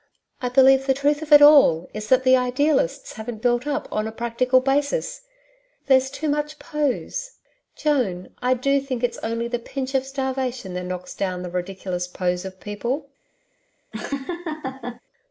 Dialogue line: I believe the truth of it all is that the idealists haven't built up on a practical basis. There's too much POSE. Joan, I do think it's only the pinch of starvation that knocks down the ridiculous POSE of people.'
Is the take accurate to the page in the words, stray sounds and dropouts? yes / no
no